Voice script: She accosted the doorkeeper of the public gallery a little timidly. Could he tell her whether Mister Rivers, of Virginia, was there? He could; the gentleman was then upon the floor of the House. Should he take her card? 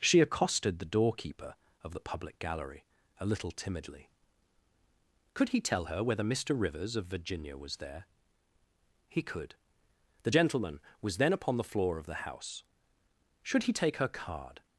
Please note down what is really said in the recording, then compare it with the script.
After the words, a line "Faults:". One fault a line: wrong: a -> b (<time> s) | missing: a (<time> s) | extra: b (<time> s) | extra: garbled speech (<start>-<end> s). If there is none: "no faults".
She accosted the doorkeeper of the public gallery a little timidly. Could he tell her whether Mister Rivers, of Virginia, was there? He could; the gentleman was then upon the floor of the House. Should he take her card?
Faults:
no faults